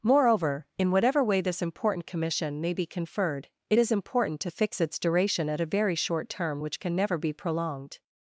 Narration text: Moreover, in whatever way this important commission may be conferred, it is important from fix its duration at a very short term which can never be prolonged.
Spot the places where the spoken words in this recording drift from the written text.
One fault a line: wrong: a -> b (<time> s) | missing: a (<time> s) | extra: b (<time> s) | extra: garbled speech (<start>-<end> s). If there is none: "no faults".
wrong: from -> to (4.4 s)